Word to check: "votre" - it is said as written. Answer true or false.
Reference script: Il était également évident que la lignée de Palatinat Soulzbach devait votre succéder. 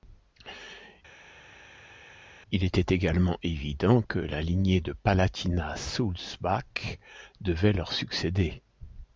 false